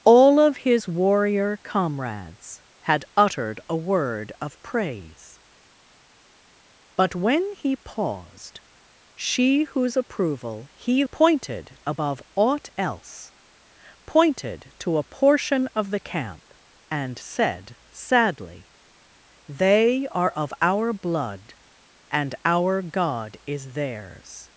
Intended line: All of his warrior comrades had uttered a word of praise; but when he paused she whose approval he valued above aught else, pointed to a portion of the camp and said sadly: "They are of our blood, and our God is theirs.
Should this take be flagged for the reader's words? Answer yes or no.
yes